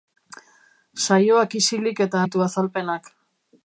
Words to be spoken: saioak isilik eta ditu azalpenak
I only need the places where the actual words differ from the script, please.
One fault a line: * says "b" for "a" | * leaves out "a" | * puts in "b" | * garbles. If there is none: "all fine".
all fine